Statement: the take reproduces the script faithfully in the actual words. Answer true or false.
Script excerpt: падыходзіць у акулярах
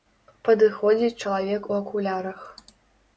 false